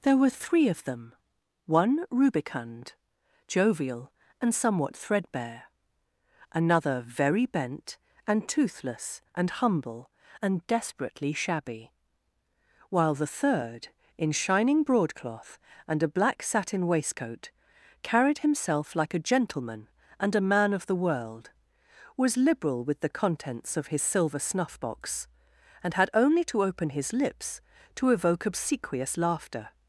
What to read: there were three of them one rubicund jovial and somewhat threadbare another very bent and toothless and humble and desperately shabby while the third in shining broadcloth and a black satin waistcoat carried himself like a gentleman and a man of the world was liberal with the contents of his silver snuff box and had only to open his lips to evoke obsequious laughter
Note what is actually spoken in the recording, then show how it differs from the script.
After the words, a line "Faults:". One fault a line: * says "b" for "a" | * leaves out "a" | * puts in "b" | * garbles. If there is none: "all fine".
there were three of them one rubicund jovial and somewhat threadbare another very bent and toothless and humble and desperately shabby while the third in shining broadcloth and a black satin waistcoat carried himself like a gentleman and a man of the world was liberal with the contents of his silver snuff box and had only to open his lips to evoke obsequious laughter
Faults:
all fine